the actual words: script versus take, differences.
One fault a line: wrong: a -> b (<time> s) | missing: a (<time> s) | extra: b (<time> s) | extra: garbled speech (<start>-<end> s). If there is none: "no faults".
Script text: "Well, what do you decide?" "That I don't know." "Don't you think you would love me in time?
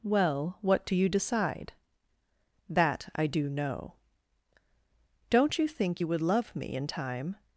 wrong: don't -> do (3.3 s)